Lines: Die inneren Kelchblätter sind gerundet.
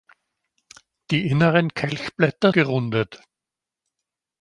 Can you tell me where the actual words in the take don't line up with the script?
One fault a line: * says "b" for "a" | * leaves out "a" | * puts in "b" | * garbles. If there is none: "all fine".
* leaves out "sind"